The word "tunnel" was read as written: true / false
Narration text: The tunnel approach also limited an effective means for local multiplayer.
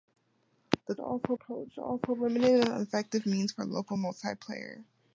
false